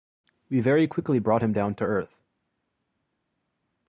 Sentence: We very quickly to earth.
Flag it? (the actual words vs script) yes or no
yes